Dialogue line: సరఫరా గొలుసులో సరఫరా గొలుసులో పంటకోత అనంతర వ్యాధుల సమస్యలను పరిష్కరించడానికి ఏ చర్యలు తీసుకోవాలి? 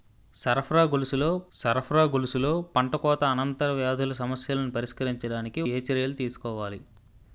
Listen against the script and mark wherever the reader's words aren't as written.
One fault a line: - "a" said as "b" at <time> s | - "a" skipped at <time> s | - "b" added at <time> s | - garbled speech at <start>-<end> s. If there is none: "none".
none